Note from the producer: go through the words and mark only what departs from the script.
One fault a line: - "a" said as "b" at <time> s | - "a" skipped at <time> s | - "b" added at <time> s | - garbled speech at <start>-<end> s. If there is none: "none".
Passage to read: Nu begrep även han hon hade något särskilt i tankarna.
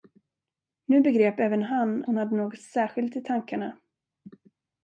none